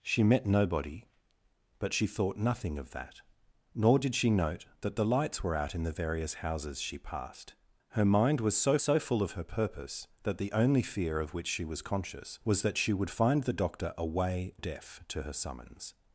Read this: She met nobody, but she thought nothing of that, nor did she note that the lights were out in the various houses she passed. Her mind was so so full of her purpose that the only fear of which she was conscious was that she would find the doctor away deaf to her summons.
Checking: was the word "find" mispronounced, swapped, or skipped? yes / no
no